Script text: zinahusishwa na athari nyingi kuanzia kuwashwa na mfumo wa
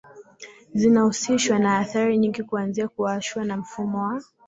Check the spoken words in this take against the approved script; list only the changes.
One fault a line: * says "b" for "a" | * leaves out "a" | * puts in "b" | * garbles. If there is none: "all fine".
all fine